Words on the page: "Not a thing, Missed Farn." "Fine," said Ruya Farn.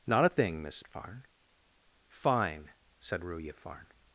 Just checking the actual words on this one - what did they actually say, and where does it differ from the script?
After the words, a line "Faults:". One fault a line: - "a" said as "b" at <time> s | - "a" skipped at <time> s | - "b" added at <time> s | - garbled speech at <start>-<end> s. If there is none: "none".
"Not a thing, Miss Farn." "Fine," said Ruya Farn.
Faults:
- "Missed" said as "Miss" at 0.6 s